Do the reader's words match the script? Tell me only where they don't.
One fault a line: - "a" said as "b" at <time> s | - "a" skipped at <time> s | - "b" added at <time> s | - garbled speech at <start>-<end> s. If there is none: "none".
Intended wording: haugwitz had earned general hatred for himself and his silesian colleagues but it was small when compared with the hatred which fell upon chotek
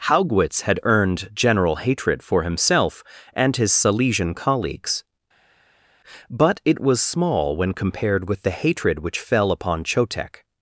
none